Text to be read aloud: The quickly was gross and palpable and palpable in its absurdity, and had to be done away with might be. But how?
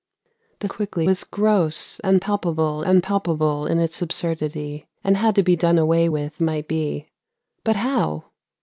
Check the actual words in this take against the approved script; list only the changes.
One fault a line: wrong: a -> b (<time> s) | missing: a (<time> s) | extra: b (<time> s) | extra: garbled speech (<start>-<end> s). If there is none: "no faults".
no faults